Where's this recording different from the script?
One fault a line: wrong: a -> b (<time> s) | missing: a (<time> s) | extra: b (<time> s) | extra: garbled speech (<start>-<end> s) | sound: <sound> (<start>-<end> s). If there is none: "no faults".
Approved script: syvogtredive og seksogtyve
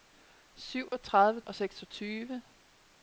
sound: dropout (0.9-0.9 s)